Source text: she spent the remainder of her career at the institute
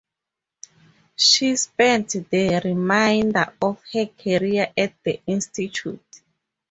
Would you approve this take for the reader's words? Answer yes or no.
yes